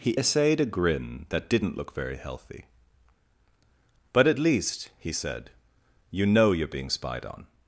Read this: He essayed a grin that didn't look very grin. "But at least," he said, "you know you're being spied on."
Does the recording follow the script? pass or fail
fail